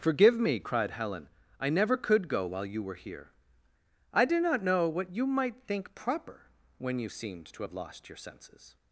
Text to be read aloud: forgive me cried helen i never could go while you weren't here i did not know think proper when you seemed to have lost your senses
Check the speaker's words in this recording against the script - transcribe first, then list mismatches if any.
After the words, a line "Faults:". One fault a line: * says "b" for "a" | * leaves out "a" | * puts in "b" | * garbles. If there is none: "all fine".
forgive me cried helen i never could go while you were here i did not know what you might think proper when you seemed to have lost your senses
Faults:
* says "were" for "weren't"
* puts in "what you might"